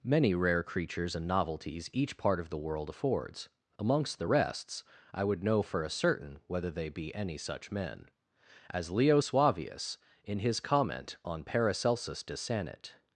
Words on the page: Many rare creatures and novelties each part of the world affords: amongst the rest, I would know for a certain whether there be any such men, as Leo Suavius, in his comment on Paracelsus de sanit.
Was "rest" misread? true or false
true